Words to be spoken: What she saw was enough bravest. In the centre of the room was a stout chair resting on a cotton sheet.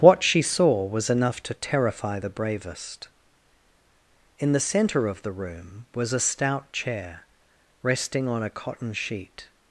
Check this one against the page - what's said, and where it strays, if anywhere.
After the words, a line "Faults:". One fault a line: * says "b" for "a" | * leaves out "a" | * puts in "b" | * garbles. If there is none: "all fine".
What she saw was enough to terrify the bravest. In the centre of the room was a stout chair resting on a cotton sheet.
Faults:
* puts in "to terrify the"